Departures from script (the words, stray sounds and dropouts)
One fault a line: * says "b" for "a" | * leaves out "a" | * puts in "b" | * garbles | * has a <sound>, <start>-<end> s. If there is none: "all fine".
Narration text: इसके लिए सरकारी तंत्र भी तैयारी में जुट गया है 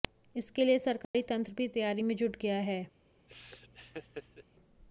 * has a dropout, 1.0-1.1 s
* has a laugh, 3.3-4.4 s